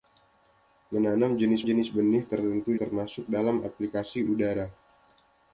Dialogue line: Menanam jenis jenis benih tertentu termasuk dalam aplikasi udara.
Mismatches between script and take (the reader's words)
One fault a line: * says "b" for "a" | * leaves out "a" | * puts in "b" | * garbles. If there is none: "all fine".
all fine